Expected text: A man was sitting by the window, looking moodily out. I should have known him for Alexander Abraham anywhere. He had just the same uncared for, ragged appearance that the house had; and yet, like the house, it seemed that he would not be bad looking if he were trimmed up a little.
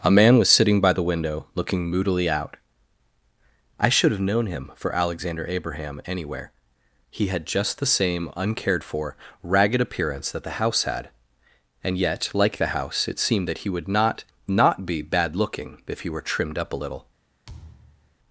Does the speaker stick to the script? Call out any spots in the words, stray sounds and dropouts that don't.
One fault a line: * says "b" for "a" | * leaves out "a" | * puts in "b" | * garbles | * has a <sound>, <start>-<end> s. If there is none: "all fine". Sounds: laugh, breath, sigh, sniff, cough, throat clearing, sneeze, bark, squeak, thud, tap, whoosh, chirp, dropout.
* puts in "not"
* has a thud, 17.5-18.2 s